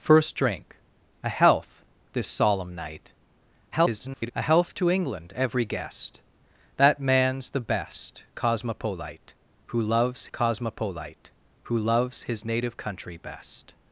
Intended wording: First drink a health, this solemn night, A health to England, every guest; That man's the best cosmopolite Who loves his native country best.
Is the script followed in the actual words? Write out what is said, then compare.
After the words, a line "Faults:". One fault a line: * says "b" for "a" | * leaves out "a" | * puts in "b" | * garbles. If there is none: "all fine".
First drink a health, this solemn night, [garbled] A health to England, every guest; That man's the best cosmopolite Who loves cosmopolite Who loves his native country best.
Faults:
* garbles
* puts in "cosmopolite Who loves"